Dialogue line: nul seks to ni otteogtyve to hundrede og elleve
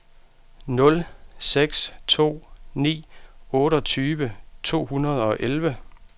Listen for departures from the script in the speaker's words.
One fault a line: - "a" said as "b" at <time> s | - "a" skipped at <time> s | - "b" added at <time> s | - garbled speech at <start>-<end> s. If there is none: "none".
none